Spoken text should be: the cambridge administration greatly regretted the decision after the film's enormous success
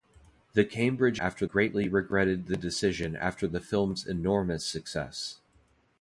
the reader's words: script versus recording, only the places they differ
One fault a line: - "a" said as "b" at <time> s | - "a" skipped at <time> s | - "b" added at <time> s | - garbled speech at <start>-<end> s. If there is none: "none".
- "administration" said as "after" at 1.1 s